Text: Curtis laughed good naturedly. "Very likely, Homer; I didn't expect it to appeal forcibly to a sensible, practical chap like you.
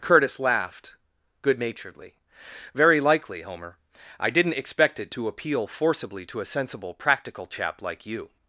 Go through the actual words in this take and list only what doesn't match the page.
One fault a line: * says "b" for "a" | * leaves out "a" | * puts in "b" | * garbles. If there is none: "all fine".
all fine